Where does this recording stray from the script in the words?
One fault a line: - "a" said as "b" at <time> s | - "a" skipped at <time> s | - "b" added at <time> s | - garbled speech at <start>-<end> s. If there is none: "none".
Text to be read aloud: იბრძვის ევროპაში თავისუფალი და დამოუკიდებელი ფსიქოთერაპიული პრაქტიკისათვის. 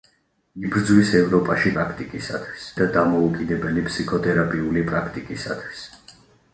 - "თავისუფალი" said as "პრაქტიკისათვის" at 1.8 s